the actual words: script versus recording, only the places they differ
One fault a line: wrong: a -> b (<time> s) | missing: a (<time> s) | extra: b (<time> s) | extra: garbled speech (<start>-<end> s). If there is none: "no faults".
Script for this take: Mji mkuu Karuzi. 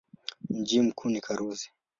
extra: ni (1.1 s)